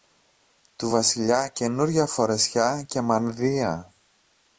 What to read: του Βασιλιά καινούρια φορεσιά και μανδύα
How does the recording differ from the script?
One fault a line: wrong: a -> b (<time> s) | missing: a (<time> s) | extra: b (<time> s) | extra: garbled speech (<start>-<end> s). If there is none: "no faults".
no faults